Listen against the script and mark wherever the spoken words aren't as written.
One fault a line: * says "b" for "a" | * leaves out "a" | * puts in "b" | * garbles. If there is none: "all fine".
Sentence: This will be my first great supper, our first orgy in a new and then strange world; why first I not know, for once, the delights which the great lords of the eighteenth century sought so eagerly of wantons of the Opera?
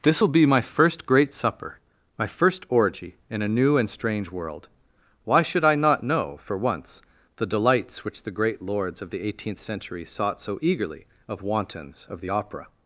* says "my" for "our"
* leaves out "then"
* says "should" for "first"